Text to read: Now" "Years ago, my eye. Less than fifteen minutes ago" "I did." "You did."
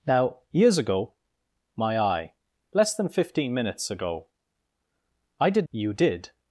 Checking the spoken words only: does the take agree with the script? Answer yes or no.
yes